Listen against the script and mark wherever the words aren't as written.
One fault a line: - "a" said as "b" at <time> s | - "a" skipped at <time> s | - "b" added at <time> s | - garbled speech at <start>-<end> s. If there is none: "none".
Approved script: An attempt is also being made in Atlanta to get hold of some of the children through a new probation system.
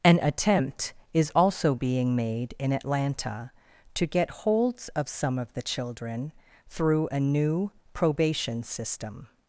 - "hold" said as "holds" at 4.3 s